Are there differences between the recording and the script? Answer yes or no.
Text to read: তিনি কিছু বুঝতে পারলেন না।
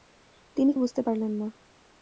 yes